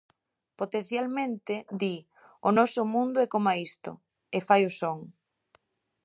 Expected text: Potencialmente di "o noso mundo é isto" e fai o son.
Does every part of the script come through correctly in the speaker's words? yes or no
no